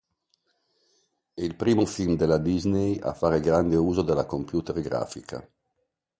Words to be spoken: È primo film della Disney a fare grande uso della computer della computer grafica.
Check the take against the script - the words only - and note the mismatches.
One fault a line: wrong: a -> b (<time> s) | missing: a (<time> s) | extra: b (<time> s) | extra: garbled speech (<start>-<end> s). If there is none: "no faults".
extra: il (1.4 s)
missing: della computer (4.8 s)